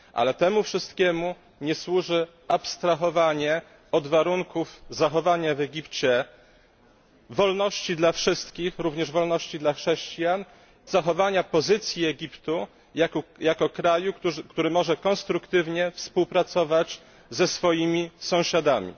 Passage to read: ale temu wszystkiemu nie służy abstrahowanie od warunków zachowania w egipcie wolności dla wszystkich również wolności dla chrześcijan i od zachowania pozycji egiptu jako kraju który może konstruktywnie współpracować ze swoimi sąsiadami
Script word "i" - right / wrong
wrong